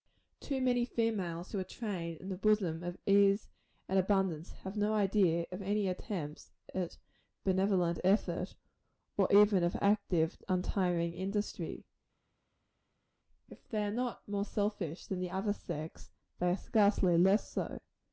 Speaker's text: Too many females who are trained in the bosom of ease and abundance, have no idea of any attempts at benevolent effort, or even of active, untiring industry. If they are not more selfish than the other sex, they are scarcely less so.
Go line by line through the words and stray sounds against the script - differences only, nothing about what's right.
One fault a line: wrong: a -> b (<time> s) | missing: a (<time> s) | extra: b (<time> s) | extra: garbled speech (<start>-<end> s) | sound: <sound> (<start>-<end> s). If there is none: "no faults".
no faults